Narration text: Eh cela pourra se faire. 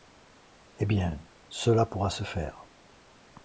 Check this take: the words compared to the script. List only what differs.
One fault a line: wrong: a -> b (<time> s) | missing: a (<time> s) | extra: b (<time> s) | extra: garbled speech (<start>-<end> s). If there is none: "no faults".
extra: bien (0.9 s)